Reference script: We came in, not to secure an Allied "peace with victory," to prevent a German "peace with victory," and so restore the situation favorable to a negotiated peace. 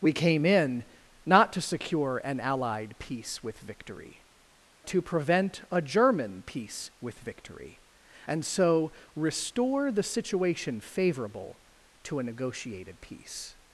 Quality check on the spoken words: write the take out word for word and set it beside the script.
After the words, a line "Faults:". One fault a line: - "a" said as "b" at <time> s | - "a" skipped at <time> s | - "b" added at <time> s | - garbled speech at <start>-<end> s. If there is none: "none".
We came in, not to secure an Allied "peace with victory," to prevent a German "peace with victory," and so restore the situation favorable to a negotiated peace.
Faults:
none